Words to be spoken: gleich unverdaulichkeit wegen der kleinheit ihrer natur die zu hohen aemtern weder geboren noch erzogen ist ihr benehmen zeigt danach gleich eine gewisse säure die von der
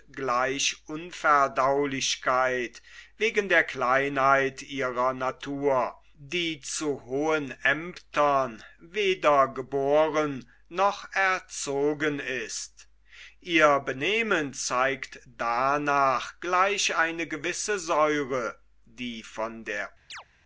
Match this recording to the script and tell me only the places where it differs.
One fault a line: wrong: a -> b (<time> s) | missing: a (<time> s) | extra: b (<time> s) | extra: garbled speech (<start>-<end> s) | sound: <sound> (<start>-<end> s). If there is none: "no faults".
sound: chirp (20.1-20.2 s)